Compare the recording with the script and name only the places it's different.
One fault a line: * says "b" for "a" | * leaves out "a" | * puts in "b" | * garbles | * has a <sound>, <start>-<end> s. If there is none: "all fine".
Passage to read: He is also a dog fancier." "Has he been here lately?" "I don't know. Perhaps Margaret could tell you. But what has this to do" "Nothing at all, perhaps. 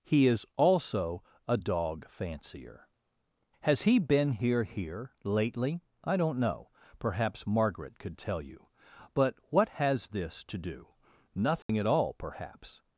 * puts in "here"
* has a dropout, 11.6-11.7 s